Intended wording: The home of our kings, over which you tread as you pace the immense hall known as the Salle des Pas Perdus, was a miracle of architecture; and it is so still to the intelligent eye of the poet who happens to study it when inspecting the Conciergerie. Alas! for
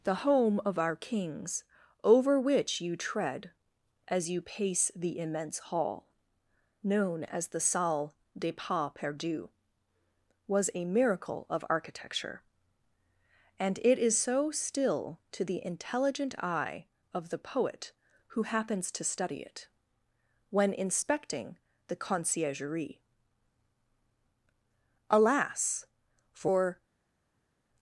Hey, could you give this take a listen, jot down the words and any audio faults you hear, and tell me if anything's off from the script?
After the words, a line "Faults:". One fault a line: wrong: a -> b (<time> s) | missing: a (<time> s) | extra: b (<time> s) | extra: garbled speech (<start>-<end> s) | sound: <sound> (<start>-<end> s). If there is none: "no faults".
The home of our kings, over which you tread as you pace the immense hall known as the Salle des Pas Perdus, was a miracle of architecture; and it is so still to the intelligent eye of the poet who happens to study it when inspecting the Conciergerie. Alas! for
Faults:
no faults